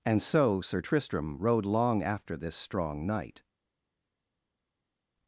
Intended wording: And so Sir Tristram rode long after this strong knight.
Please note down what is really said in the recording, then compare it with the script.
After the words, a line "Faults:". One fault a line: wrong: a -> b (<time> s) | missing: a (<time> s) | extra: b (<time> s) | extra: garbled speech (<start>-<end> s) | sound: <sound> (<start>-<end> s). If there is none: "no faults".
And so Sir Tristram rode long after this strong knight.
Faults:
no faults